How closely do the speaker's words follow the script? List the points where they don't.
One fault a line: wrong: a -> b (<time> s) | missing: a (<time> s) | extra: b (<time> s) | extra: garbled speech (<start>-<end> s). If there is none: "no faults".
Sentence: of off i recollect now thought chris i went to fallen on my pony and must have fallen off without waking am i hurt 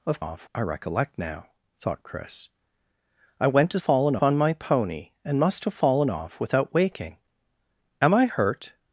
no faults